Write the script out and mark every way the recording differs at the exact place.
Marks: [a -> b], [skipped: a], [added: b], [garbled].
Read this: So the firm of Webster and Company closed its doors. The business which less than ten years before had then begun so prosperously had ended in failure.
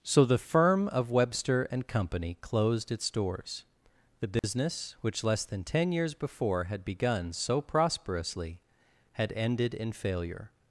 So the firm of Webster and Company closed its doors. The business which less than ten years before had [skipped: then] begun so prosperously had ended in failure.